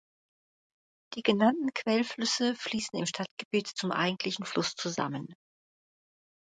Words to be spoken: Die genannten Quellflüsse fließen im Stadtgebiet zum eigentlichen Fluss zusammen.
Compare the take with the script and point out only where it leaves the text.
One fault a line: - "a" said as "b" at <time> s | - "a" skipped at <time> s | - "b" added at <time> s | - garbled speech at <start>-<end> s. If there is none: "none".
none